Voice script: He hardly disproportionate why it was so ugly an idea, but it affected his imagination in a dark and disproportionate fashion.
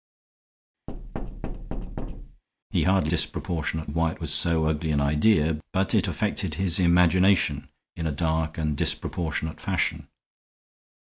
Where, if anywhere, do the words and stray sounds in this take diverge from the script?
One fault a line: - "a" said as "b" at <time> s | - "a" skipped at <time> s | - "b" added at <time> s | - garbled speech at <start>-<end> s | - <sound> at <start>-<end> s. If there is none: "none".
- thud at 0.9-2.4 s